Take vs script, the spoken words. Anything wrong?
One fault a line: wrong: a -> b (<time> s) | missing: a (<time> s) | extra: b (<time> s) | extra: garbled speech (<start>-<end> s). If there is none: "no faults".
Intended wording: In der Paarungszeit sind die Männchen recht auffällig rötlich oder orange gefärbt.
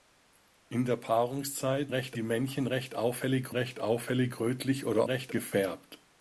wrong: sind -> recht (1.9 s)
extra: recht auffällig (3.5 s)
wrong: orange -> recht (5.0 s)